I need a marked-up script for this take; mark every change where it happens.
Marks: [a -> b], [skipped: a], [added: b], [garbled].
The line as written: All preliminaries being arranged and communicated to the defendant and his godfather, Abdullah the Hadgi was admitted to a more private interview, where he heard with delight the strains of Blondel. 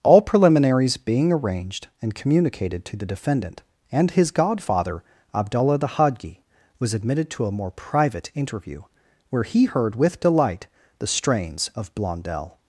All preliminaries being arranged and communicated to the defendant and his godfather, Abdullah the Hadgi was admitted to a more private interview, where he heard with delight the strains of Blondel.